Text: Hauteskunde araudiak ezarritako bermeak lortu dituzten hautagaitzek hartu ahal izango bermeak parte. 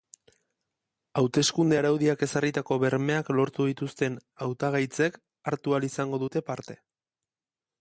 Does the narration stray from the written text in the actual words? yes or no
yes